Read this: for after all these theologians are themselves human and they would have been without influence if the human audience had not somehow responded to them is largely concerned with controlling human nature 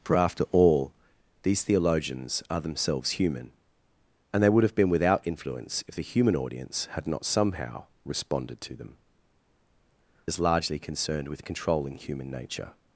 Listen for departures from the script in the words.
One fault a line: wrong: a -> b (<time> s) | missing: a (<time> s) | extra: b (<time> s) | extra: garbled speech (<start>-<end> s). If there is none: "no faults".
no faults